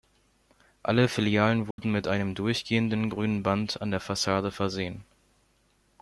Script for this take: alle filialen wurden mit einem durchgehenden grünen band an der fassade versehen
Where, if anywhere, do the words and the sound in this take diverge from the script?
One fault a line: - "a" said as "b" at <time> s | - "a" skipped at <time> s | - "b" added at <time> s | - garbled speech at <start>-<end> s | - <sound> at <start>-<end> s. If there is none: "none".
- dropout at 1.7-1.8 s